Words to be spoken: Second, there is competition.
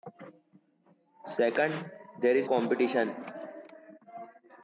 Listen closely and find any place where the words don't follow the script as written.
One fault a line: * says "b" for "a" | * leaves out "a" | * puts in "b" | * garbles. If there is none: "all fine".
all fine